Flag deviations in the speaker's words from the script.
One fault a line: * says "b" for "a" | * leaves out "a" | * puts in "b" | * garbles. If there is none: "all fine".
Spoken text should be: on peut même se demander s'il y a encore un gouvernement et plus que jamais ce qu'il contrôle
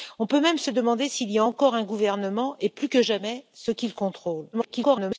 * garbles